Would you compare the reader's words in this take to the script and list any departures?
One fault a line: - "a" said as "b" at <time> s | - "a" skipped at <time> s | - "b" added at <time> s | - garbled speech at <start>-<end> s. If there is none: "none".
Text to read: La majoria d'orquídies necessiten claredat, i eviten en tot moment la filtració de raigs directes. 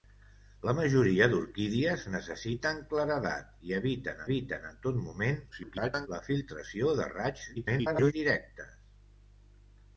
- "eviten" added at 4.3 s
- garbled speech at 5.5-6.1 s
- garbled speech at 7.6-8.1 s